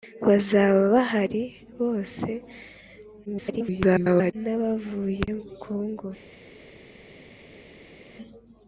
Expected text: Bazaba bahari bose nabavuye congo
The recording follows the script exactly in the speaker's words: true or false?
false